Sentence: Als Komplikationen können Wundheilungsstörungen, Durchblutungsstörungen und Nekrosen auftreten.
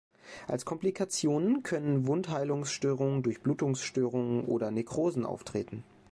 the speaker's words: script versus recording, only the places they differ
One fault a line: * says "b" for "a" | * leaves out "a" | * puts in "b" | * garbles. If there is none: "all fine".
* says "oder" for "und"